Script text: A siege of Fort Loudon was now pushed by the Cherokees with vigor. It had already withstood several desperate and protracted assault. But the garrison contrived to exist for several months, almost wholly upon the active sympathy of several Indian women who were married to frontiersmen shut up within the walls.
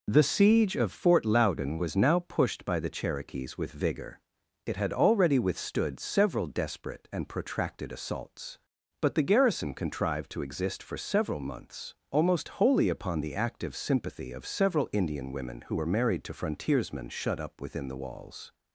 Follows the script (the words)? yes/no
no